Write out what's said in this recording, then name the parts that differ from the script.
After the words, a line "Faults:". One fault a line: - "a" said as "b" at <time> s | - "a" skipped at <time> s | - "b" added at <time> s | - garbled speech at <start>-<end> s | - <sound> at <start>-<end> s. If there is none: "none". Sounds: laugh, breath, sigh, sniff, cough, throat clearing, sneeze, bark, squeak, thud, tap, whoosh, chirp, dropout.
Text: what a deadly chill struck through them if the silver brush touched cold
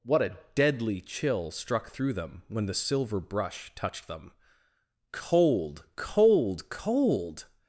what a deadly chill struck through them when the silver brush touched them cold cold cold
Faults:
- "if" said as "when" at 2.5 s
- "them cold cold" added at 4.1 s